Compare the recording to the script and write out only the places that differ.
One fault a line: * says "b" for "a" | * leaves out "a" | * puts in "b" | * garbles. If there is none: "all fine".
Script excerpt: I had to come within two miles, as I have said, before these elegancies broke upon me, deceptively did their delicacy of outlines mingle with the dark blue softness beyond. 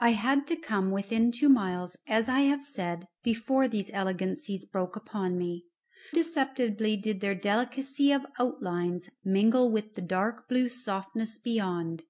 all fine